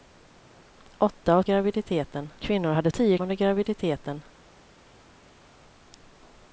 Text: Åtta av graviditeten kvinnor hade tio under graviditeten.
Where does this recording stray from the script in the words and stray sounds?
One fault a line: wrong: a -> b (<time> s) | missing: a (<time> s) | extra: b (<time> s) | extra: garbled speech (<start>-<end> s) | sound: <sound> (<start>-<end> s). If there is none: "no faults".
no faults